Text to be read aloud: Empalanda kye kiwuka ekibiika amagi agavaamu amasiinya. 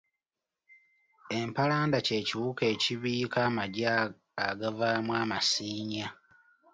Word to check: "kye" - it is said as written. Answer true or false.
true